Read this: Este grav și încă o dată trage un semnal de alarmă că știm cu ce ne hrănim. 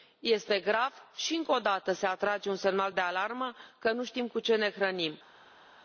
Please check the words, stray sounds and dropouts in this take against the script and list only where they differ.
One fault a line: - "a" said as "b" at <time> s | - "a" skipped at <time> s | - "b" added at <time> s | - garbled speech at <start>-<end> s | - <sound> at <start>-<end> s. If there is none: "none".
- "se" added at 1.9 s
- "nu" added at 3.9 s